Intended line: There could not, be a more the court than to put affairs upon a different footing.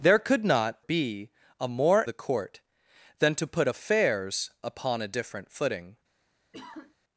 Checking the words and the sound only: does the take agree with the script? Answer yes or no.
no